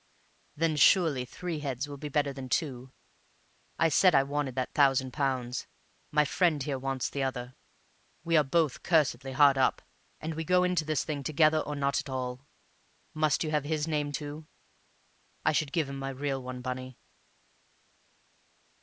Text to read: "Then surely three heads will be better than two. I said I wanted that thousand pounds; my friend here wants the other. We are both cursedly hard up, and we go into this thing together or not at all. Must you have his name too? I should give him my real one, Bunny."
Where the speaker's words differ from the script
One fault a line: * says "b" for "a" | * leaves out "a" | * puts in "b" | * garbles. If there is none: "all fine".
all fine